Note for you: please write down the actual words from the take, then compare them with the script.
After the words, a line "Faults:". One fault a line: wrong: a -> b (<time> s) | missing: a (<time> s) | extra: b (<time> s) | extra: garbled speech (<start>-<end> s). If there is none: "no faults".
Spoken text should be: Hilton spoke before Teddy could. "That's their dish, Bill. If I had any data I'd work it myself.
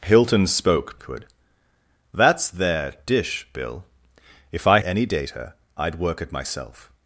Hilton spoke could. "That's their dish, Bill. If I any data I'd work it myself.
Faults:
missing: before Teddy (1.0 s)
missing: had (4.8 s)